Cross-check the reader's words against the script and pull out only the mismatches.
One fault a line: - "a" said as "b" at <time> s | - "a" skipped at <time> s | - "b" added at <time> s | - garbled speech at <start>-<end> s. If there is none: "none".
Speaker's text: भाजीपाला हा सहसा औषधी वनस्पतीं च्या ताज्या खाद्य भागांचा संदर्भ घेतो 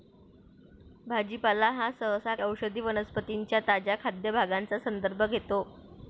none